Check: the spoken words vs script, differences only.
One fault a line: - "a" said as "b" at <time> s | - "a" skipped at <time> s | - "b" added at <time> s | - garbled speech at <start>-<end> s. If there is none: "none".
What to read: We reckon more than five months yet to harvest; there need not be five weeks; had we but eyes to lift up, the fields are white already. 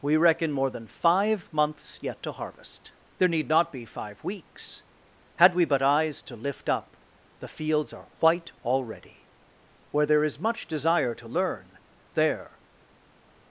- "Where there is much desire to learn there" added at 9.9 s